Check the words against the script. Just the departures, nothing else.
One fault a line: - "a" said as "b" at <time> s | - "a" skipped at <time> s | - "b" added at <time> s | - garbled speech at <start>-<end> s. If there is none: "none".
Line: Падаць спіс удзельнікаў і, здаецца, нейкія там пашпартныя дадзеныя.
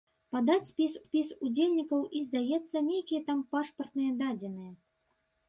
- "спіс" added at 1.0 s